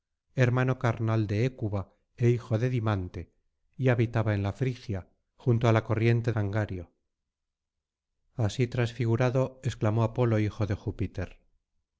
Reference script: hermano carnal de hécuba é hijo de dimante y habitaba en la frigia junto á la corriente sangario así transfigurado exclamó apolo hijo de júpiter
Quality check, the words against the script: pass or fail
pass